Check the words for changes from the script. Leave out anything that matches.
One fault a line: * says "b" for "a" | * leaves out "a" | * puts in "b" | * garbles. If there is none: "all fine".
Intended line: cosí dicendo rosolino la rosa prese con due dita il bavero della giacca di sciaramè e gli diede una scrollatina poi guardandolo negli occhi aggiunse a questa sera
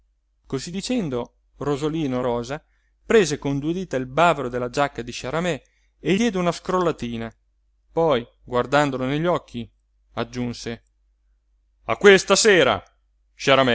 * leaves out "la"
* leaves out "gli"